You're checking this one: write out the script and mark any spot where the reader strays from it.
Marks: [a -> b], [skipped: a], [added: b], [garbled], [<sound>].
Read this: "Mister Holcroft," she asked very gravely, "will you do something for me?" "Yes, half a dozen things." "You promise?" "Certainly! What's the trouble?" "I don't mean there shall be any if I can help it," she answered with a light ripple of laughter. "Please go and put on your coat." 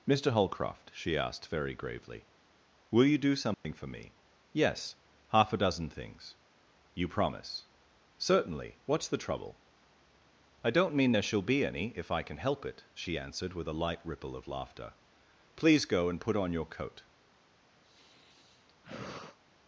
"Mister Holcroft," she asked very gravely, "will you do something [dropout] for me?" "Yes, half a dozen things." "You promise?" "Certainly! What's the trouble?" "I don't mean there shall be any if I can help it," she answered with a light ripple of laughter. "Please go and put on your coat." [sigh]